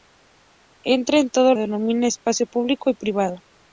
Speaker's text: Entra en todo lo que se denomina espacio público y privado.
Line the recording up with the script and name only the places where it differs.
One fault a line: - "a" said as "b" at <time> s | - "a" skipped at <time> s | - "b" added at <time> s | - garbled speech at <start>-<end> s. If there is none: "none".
- "lo que se" skipped at 1.5 s